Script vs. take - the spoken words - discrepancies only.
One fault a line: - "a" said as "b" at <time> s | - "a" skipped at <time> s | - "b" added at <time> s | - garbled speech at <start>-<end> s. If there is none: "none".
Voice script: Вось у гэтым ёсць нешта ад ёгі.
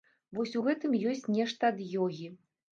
none